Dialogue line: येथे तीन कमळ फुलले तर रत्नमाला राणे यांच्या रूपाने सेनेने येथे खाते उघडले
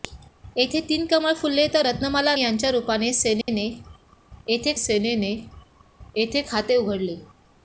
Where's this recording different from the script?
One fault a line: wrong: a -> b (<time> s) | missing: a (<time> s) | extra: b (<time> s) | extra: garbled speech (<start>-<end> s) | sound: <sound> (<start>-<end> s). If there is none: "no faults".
missing: राणे (2.4 s)
sound: dropout (3.4-3.5 s)
extra: सेनेने येथे (4.8 s)